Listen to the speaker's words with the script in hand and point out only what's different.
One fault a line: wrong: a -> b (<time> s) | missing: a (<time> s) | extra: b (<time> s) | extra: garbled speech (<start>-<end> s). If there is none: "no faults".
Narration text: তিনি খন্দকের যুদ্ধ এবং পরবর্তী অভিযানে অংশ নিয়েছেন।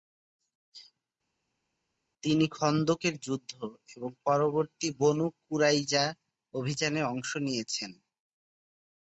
extra: বনু কুরাইজা (5.0 s)